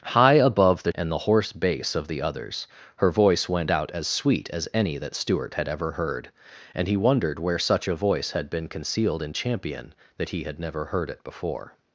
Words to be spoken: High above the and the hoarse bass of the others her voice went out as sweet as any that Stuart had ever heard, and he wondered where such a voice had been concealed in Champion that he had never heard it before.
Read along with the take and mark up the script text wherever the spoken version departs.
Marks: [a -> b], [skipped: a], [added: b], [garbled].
High above the and the hoarse bass of the others her voice went out as sweet as any that Stuart had ever heard, and he wondered where such a voice had been concealed in Champion that he had never heard it before.